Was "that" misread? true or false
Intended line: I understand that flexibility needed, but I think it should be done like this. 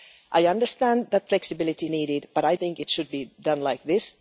false